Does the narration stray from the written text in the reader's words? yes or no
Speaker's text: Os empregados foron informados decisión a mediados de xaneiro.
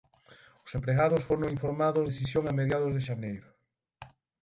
no